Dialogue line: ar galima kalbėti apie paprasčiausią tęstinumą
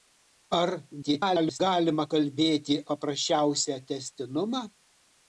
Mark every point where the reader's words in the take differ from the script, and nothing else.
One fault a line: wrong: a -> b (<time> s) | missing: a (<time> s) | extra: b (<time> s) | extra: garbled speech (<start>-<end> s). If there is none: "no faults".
extra: garbled speech (1.0-1.6 s)
missing: apie (2.8 s)